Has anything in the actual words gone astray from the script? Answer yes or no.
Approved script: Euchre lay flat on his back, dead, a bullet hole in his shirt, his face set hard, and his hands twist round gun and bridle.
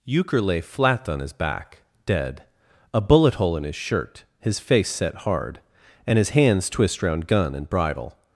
no